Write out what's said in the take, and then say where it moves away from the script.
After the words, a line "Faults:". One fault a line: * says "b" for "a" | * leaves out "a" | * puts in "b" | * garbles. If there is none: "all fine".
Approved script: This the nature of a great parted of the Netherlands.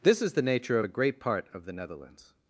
This is the nature of a great part of the Netherlands.
Faults:
* puts in "is"
* says "part" for "parted"